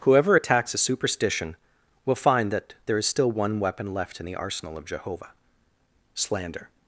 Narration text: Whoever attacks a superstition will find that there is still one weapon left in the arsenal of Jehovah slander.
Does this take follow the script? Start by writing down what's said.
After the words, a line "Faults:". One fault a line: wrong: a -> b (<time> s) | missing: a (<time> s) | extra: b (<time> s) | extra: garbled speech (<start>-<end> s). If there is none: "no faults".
Whoever attacks a superstition will find that there is still one weapon left in the arsenal of Jehovah slander.
Faults:
no faults